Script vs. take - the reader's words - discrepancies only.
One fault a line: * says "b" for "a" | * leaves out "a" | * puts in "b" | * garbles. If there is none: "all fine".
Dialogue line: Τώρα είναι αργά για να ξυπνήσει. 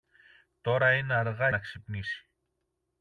* leaves out "για"